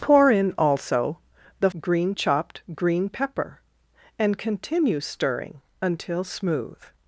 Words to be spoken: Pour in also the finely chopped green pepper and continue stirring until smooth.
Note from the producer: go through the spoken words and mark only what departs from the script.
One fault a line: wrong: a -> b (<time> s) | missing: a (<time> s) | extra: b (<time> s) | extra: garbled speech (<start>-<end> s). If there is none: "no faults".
wrong: finely -> green (1.8 s)